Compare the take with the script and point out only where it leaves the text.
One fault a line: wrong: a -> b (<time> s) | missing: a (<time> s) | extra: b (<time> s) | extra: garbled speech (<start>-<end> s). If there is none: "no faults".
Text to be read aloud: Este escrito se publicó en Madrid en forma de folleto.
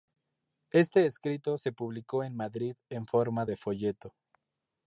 no faults